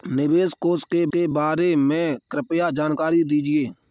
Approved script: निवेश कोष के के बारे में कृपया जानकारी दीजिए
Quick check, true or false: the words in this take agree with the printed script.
true